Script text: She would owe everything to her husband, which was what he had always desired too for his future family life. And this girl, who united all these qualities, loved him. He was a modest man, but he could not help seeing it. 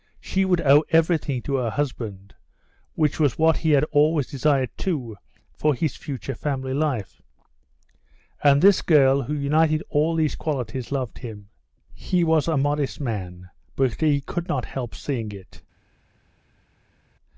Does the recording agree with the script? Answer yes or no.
yes